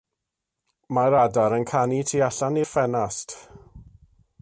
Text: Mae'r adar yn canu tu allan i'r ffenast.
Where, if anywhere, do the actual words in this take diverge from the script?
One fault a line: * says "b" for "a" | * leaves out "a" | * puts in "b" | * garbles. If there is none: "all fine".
all fine